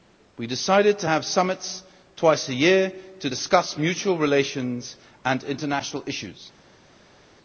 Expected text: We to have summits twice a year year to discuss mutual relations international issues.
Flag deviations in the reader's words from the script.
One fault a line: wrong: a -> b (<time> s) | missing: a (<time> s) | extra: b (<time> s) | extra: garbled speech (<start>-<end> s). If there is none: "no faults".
extra: decided (0.5 s)
missing: year (2.9 s)
extra: and (5.2 s)